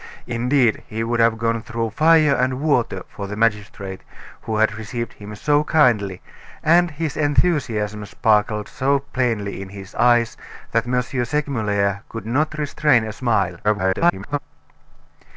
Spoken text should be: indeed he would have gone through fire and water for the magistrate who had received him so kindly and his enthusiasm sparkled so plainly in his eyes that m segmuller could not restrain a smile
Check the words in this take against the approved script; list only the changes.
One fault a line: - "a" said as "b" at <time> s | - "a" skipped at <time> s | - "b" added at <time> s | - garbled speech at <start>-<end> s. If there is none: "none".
- garbled speech at 13.6-14.4 s